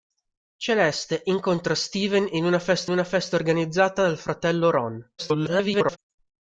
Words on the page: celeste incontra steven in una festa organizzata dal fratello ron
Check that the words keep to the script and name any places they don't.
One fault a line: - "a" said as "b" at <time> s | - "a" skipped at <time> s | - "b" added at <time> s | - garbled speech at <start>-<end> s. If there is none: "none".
- "una festa" added at 2.9 s
- garbled speech at 5.2-6.0 s